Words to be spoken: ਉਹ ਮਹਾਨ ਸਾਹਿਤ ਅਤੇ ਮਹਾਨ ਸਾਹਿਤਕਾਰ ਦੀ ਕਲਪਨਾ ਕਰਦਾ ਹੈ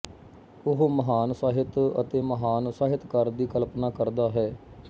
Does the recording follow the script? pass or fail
pass